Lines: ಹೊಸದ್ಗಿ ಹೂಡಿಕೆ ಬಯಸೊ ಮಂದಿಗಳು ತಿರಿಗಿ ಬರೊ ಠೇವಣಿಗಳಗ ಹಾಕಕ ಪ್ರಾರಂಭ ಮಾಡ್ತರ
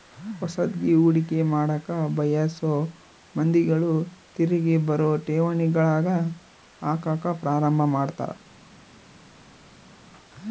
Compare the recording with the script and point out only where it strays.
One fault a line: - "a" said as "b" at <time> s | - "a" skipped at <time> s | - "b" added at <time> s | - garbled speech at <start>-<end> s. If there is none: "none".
- "ಮಾಡಕ" added at 1.5 s